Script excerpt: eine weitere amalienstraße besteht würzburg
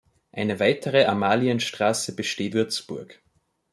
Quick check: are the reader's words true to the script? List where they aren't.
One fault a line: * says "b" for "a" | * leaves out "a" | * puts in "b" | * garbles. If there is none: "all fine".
all fine